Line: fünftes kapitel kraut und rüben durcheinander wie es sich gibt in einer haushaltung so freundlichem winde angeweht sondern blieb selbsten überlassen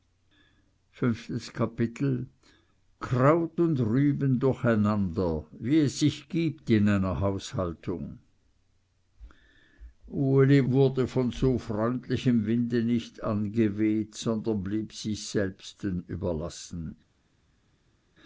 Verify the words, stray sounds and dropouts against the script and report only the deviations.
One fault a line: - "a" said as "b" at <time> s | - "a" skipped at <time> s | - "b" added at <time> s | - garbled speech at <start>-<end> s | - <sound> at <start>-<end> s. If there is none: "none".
- "uli wurde von" added at 10.0 s
- "nicht" added at 12.8 s
- "sich" added at 14.9 s